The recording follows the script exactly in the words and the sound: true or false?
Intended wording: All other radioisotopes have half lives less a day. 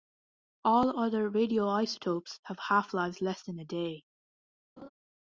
false